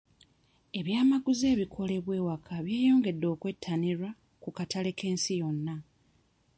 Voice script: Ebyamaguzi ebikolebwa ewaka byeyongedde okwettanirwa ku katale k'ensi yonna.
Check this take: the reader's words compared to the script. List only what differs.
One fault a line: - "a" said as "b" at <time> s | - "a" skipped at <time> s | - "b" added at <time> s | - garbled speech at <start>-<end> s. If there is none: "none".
none